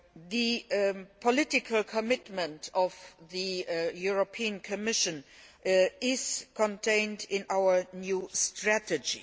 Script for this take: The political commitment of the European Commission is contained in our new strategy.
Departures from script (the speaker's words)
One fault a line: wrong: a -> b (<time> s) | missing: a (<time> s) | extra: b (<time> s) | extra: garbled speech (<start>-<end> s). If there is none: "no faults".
no faults